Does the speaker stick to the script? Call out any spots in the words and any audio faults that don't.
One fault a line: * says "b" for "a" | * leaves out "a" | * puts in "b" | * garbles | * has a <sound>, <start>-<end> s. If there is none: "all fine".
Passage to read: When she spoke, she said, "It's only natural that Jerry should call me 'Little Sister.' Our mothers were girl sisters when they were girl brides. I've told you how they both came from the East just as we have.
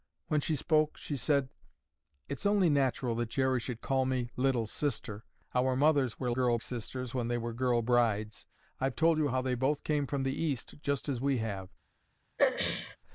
* has a throat clearing, 12.4-13.0 s